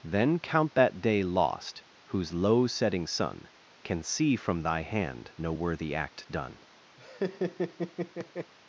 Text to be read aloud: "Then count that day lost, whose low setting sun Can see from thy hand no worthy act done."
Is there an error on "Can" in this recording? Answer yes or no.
no